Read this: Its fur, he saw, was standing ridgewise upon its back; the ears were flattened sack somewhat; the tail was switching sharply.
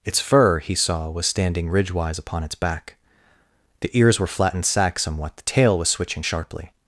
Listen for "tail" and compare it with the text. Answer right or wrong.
right